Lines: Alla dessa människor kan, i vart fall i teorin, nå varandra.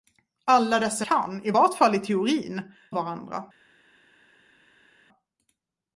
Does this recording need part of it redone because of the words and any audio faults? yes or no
yes